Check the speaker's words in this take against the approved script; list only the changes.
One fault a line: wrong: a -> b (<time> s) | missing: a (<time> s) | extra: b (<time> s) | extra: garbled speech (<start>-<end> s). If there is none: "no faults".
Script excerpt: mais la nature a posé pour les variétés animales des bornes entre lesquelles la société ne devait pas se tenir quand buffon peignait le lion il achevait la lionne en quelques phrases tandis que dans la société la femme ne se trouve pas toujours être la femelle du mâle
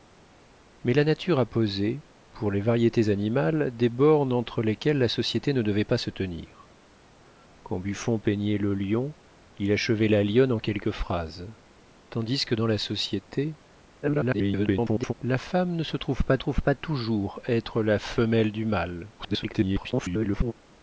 extra: garbled speech (14.0-15.1 s)
extra: trouve pas (16.4 s)
extra: garbled speech (19.2-20.5 s)